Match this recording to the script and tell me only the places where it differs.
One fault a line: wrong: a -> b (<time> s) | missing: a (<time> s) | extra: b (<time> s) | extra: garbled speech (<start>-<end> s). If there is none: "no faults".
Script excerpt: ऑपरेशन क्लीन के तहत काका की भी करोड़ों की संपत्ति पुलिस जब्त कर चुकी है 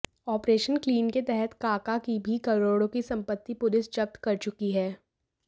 no faults